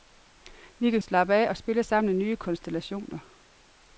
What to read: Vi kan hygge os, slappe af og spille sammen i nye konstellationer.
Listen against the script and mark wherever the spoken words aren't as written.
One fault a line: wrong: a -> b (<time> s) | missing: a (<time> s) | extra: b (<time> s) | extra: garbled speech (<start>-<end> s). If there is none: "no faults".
missing: hygge os (1.0 s)